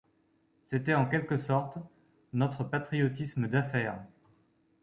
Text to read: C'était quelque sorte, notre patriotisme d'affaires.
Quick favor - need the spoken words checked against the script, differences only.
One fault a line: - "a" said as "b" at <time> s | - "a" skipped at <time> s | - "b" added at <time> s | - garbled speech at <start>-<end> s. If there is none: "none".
- "en" added at 0.9 s